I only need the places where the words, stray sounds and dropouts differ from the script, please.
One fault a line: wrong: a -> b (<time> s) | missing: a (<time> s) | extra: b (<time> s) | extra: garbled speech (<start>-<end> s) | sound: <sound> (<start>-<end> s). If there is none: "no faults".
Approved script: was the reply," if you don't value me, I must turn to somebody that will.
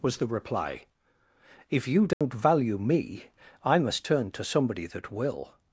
sound: dropout (2.1-2.2 s)